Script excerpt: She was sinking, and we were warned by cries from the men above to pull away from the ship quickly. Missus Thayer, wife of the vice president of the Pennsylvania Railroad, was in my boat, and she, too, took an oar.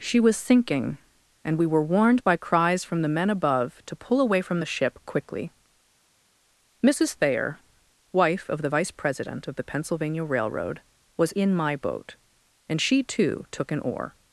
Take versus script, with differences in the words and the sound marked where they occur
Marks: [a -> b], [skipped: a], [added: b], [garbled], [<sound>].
She was sinking, and we were warned by cries from the men above to pull away from the ship quickly. Missus Thayer, wife of the vice president of the Pennsylvania Railroad, was in my boat, and she, too, took an oar.